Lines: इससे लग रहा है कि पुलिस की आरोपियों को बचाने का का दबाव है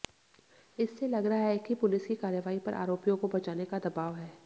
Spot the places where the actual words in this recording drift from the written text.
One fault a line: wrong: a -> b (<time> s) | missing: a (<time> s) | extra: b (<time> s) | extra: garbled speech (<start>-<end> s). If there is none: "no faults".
extra: कार्रवाई पर (2.1 s)
missing: का (3.8 s)